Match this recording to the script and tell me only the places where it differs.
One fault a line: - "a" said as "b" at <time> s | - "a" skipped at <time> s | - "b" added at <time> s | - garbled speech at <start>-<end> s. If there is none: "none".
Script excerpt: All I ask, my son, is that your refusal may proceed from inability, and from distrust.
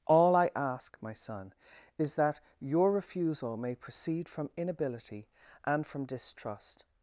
none